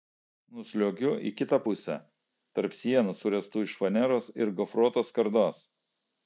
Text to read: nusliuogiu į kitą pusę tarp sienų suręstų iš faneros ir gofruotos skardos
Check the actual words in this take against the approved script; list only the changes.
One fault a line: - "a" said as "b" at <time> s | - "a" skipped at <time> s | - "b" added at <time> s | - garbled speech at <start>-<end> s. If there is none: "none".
none